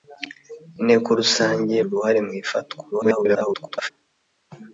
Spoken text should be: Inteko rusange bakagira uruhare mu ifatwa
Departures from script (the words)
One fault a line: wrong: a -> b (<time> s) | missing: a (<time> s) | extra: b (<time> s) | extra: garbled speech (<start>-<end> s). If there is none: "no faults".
missing: bakagira (1.8 s)
extra: garbled speech (2.9-3.9 s)